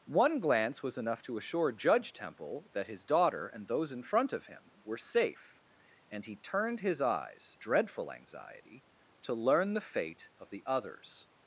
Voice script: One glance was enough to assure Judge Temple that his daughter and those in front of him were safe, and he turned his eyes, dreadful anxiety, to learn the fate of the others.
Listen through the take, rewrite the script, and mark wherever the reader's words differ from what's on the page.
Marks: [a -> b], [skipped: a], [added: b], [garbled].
One glance was enough to assure Judge Temple that his daughter and those in front of him were safe, and he turned his eyes, dreadful anxiety, to learn the fate of the others.